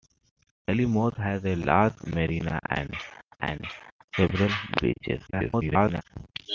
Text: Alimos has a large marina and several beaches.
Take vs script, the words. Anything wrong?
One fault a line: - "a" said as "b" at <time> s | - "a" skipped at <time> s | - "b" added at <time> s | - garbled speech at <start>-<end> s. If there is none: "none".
- "and" added at 3.4 s
- garbled speech at 5.3-6.0 s